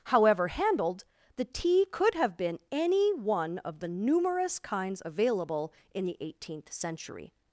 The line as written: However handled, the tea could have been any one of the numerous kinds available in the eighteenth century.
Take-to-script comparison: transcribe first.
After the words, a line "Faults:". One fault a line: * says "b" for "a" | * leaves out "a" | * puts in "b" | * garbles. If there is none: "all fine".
However handled, the tea could have been any one of the numerous kinds available in the eighteenth century.
Faults:
all fine